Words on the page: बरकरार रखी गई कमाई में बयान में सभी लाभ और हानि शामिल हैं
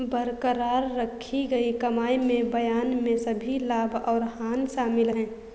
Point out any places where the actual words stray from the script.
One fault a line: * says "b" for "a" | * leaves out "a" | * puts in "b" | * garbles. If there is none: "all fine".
all fine